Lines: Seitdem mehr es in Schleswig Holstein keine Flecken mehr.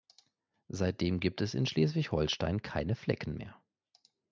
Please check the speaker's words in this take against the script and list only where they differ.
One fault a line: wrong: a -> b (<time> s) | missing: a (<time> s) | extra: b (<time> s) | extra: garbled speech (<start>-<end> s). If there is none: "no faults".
wrong: mehr -> gibt (1.2 s)